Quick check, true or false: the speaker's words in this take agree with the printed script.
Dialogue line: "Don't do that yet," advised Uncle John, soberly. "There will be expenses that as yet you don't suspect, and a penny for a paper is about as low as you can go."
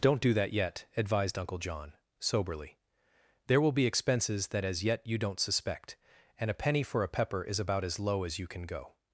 false